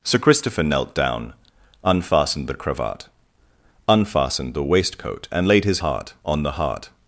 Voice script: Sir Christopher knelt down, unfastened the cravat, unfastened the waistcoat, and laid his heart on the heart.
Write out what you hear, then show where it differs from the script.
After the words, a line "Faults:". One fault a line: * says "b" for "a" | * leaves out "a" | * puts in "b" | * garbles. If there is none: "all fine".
Sir Christopher knelt down, unfastened the cravat, unfastened the waistcoat, and laid his heart on the heart.
Faults:
all fine